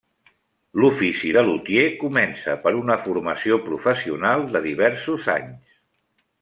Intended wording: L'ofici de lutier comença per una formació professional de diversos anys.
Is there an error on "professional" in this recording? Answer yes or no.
no